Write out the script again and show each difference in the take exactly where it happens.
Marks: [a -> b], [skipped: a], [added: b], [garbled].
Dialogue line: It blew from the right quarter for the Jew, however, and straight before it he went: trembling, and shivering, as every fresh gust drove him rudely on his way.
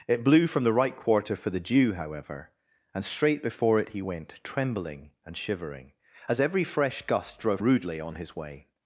It blew from the right quarter for the Jew, however, and straight before it he went: trembling, and shivering, as every fresh gust drove [skipped: him] rudely on his way.